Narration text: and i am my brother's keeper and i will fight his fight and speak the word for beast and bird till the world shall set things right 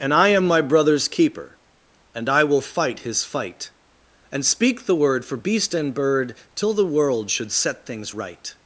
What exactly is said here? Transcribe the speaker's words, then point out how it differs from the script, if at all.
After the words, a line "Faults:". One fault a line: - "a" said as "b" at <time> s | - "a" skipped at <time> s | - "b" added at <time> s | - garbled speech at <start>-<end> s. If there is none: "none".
and i am my brother's keeper and i will fight his fight and speak the word for beast and bird till the world should set things right
Faults:
- "shall" said as "should" at 7.3 s